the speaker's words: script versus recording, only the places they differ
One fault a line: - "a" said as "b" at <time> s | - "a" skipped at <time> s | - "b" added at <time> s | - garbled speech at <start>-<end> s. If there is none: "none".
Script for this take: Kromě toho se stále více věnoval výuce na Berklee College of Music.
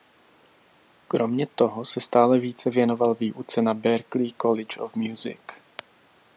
none